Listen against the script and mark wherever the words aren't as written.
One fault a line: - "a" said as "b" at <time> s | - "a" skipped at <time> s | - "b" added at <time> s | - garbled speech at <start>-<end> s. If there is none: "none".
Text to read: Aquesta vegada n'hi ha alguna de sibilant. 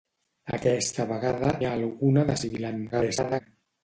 - "n'hi" skipped at 1.5 s
- garbled speech at 2.9-3.4 s